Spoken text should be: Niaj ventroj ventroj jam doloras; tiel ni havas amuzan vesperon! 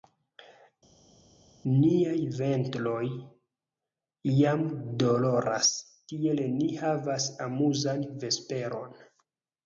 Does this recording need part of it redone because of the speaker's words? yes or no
yes